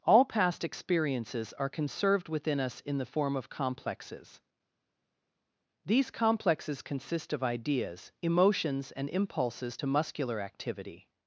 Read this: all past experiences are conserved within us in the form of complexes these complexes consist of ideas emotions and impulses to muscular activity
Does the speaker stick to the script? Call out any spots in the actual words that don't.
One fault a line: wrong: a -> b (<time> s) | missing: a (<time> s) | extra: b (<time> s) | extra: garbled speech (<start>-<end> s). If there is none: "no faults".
no faults